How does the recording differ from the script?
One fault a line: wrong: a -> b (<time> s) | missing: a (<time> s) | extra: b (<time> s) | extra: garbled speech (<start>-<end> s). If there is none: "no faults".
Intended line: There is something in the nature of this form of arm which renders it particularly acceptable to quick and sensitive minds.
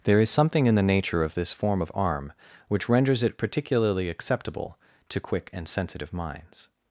no faults